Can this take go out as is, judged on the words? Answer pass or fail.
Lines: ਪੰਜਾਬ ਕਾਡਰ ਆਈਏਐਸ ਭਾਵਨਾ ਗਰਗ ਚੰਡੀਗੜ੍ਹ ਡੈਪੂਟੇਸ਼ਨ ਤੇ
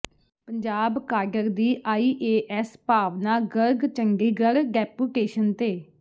fail